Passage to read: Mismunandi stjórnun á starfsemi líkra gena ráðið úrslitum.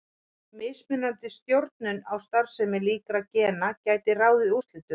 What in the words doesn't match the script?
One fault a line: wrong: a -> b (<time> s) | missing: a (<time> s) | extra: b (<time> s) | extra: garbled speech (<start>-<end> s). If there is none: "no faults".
extra: gæti (3.9 s)